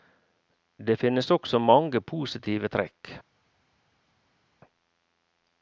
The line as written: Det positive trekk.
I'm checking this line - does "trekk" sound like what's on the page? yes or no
yes